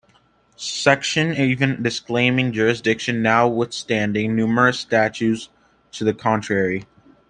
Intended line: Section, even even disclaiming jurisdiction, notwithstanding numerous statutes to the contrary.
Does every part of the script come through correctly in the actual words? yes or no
no